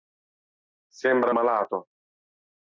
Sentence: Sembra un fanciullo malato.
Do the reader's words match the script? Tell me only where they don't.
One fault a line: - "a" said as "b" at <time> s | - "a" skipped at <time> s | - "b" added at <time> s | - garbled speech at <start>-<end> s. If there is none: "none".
- "un fanciullo" skipped at 1.4 s